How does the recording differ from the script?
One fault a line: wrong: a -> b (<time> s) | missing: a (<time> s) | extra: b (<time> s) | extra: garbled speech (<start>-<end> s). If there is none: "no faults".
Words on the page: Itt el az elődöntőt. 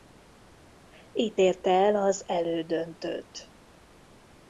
extra: érte (1.4 s)